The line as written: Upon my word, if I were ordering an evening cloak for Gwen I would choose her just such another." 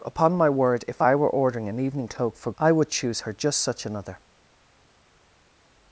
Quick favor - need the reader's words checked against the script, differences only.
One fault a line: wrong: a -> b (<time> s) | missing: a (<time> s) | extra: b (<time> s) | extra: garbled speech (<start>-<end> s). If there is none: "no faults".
missing: Gwen (2.5 s)